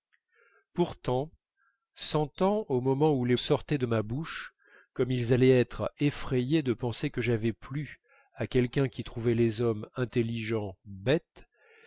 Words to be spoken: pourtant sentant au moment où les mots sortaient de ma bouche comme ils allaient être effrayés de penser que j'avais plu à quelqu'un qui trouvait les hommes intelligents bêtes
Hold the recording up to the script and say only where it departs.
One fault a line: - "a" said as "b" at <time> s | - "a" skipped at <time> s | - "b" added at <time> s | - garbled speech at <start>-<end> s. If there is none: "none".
- "mots" skipped at 3.4 s